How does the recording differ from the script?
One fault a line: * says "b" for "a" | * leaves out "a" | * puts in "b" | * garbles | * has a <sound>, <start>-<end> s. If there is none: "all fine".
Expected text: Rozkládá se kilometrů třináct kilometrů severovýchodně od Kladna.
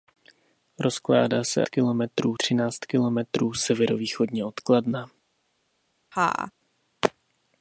* has a laugh, 6.1-6.5 s